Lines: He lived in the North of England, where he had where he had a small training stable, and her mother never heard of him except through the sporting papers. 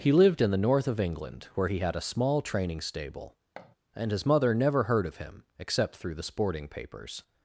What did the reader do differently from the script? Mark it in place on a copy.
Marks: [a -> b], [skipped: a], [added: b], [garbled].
He lived in the North of England, where he had [skipped: where he had] a small training stable, and [her -> his] mother never heard of him except through the sporting papers.